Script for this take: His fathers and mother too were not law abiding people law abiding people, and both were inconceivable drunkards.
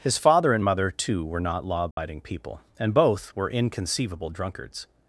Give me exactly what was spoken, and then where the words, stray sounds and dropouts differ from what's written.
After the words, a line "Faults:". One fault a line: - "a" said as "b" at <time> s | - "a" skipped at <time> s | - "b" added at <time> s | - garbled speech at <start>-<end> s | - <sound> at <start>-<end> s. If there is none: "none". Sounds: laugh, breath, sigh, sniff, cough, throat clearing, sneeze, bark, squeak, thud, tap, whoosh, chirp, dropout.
His father and mother too were not law abiding people, and both were inconceivable drunkards.
Faults:
- "fathers" said as "father" at 0.2 s
- dropout at 1.9-2.0 s
- "law abiding people" skipped at 2.6 s